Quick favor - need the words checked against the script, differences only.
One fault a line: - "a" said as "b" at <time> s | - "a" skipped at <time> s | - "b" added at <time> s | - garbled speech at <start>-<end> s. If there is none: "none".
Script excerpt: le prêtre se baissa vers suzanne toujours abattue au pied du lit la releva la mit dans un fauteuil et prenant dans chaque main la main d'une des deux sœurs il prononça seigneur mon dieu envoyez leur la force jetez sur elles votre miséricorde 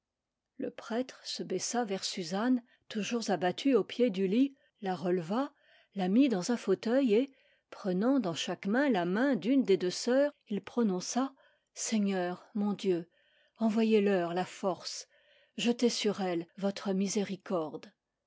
none